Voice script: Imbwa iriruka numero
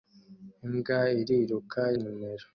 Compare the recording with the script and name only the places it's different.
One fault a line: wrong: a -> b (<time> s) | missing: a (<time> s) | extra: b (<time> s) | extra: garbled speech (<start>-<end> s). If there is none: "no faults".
no faults